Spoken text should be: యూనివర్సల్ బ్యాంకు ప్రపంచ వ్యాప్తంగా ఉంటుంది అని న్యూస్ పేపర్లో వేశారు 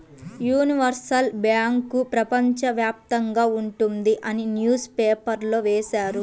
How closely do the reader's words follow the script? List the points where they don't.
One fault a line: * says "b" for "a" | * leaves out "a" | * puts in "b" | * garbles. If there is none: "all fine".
all fine